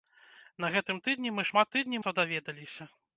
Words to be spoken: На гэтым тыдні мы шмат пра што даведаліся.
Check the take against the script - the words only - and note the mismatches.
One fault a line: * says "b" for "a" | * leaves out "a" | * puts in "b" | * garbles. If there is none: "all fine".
* says "тыдні" for "пра"